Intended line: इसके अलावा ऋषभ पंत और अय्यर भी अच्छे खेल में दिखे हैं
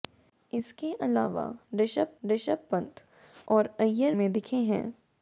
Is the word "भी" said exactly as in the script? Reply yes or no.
no